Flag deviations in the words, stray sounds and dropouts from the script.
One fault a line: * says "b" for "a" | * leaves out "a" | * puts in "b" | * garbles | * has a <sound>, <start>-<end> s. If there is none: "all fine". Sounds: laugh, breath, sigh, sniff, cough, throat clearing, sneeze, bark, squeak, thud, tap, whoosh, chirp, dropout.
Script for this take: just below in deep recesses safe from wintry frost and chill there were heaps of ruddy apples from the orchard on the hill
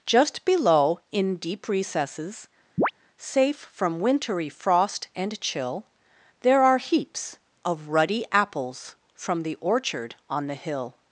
* has a chirp, 2.8-2.9 s
* says "are" for "were"